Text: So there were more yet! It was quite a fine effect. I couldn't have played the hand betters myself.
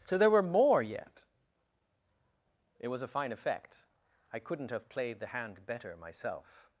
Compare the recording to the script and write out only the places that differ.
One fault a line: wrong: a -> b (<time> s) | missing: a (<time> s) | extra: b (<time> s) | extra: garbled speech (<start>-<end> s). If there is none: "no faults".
missing: quite (3.0 s)
wrong: betters -> better (5.7 s)